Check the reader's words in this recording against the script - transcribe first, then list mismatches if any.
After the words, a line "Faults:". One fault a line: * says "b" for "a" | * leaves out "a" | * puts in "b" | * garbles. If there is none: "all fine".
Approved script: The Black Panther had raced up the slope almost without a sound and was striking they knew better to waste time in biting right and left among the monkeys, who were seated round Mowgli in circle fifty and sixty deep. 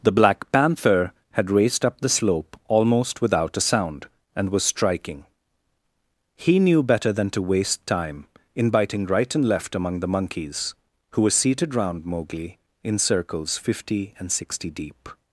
The Black Panther had raced up the slope almost without a sound and was striking he knew better than to waste time in biting right and left among the monkeys, who were seated round Mowgli in circles fifty and sixty deep.
Faults:
* says "he" for "they"
* puts in "than"
* says "circles" for "circle"